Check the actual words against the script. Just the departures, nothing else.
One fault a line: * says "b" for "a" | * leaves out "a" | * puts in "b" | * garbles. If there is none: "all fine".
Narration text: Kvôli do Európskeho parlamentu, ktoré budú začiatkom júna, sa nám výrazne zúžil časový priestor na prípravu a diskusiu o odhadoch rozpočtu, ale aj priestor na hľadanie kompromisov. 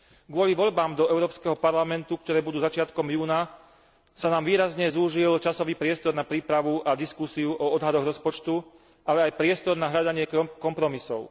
* puts in "voľbám"